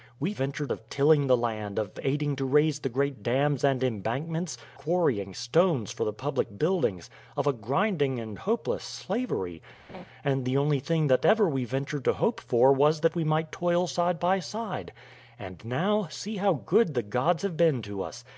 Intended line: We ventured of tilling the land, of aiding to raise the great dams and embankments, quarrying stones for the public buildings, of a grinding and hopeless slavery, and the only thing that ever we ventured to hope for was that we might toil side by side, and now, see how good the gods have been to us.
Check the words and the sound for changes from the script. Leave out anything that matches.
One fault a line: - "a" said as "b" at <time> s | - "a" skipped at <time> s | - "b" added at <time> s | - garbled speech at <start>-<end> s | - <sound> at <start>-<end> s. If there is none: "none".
- laugh at 9.9-10.0 s